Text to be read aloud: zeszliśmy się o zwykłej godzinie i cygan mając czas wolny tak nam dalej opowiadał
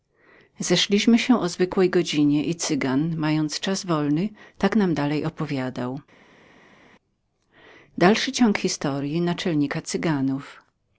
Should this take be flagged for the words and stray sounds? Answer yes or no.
no